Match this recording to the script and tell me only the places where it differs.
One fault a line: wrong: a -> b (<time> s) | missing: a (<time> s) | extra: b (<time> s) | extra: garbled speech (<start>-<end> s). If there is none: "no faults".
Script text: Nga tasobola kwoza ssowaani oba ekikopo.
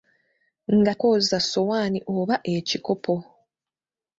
missing: tasobola (0.9 s)